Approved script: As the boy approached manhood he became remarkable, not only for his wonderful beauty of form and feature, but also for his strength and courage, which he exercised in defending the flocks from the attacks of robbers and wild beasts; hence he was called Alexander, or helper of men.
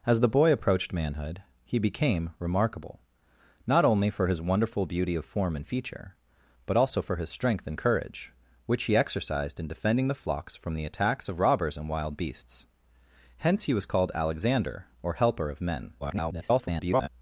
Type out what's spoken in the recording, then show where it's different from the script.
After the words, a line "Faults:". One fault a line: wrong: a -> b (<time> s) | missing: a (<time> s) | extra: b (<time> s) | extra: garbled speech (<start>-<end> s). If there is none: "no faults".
As the boy approached manhood he became remarkable, not only for his wonderful beauty of form and feature, but also for his strength and courage, which he exercised in defending the flocks from the attacks of robbers and wild beasts; hence he was called Alexander, or helper of men. [garbled]
Faults:
extra: garbled speech (16.0-17.1 s)